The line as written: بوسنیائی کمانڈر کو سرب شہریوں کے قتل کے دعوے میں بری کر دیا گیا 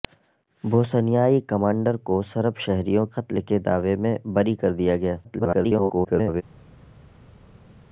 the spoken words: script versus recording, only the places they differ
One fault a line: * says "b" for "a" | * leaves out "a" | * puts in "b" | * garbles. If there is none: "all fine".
* leaves out "کے"
* garbles